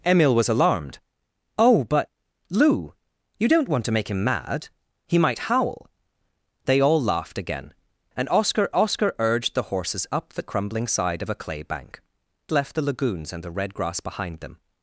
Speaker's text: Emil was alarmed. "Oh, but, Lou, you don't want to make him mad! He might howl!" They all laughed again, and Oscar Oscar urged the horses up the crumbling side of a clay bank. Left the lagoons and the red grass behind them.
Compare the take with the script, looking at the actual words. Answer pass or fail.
pass